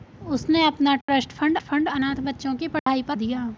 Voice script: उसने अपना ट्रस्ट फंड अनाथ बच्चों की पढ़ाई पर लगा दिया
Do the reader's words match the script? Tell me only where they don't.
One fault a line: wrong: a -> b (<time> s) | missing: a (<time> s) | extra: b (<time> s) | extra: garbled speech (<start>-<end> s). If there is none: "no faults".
extra: फंड (1.6 s)
missing: लगा (3.2 s)